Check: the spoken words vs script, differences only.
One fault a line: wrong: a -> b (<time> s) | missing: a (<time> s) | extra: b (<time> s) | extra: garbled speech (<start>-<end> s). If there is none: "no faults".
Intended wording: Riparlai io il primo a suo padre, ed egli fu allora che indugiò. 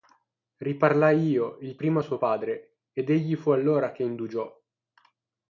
no faults